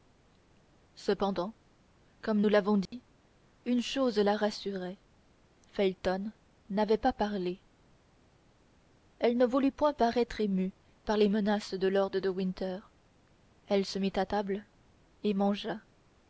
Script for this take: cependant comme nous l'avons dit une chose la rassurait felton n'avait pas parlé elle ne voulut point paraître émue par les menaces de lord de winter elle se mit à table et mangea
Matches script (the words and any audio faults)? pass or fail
fail